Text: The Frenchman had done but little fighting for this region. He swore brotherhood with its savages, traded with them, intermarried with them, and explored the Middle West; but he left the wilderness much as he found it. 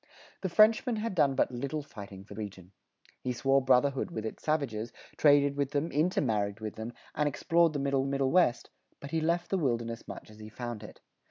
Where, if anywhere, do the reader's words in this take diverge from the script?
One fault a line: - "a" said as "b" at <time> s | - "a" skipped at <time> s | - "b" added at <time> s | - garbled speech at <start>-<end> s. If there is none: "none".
- "this" skipped at 2.3 s
- "Middle" added at 8.1 s